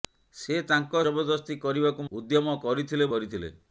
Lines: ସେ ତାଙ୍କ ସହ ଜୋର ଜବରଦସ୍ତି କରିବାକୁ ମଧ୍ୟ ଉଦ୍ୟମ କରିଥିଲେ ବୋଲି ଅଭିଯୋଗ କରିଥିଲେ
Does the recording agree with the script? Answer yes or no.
no